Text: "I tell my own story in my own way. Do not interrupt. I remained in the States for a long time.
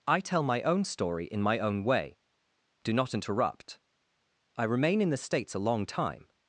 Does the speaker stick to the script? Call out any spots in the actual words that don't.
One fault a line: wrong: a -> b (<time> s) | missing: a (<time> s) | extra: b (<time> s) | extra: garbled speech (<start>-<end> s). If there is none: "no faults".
wrong: remained -> remain (4.6 s)
missing: for (5.5 s)